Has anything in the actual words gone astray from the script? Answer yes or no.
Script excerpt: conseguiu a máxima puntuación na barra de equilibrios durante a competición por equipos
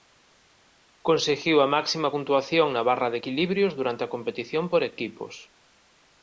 no